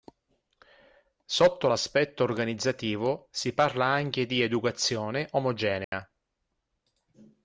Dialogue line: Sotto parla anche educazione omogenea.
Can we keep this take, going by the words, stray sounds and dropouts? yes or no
no